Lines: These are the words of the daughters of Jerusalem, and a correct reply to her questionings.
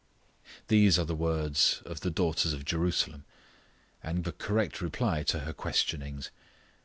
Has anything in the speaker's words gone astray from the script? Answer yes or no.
no